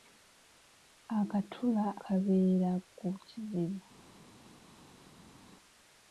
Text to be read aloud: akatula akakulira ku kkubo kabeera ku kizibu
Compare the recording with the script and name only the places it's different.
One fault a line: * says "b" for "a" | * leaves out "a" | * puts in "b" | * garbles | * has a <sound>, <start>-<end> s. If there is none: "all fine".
* leaves out "akakulira ku kkubo"